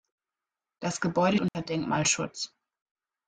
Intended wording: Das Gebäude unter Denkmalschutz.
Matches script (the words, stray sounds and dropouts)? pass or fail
fail